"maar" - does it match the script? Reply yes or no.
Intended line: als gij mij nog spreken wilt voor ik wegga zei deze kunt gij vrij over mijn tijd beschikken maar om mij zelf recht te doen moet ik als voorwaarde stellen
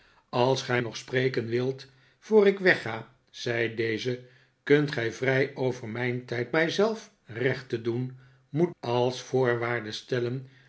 no